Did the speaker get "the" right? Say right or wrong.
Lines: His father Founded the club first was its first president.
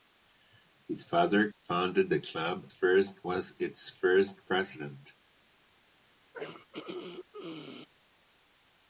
right